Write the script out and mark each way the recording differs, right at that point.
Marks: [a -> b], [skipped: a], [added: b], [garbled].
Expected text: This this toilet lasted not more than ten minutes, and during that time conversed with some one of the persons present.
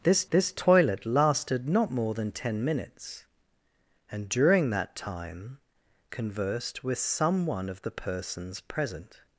This this toilet lasted not more than ten minutes, and during that time conversed with some one of the persons present.